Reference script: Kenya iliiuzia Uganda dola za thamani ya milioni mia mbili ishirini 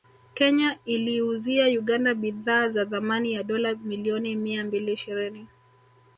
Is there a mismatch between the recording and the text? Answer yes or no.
yes